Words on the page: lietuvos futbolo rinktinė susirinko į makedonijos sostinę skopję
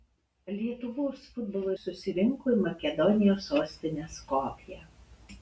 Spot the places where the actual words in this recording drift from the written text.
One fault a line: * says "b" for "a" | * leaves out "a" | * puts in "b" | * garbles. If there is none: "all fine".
* leaves out "rinktinė"